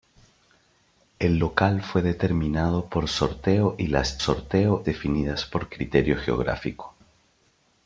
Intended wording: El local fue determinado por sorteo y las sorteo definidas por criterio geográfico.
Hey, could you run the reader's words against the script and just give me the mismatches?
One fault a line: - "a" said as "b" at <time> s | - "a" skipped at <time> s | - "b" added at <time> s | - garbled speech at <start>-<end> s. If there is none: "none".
none